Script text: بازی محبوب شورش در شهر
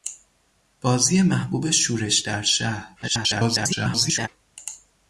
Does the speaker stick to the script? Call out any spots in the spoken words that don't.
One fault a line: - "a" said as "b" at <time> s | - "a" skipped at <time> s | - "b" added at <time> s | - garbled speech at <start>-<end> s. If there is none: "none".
- garbled speech at 3.0-4.3 s